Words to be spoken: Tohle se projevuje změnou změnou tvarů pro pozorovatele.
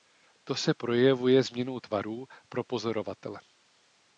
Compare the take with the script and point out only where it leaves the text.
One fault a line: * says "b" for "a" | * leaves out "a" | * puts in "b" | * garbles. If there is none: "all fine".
* says "To" for "Tohle"
* leaves out "změnou"